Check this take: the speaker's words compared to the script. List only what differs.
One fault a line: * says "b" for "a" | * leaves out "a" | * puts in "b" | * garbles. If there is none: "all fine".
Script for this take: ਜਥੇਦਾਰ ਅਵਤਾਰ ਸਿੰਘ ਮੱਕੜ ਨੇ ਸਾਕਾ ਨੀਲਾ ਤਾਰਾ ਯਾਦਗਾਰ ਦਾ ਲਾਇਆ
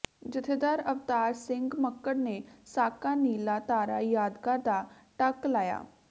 * puts in "ਟੱਕ"